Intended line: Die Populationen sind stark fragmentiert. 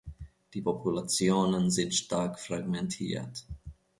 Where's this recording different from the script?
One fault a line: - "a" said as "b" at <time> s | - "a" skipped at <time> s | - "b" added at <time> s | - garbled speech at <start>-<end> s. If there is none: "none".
none